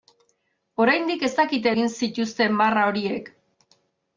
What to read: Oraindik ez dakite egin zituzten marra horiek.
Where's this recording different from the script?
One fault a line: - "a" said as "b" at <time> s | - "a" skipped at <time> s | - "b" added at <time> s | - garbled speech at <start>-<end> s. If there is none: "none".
none